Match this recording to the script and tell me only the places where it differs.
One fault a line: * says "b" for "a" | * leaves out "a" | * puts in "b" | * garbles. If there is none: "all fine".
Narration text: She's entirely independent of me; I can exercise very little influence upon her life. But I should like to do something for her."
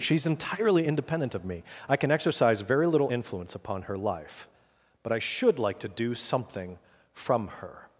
* says "from" for "for"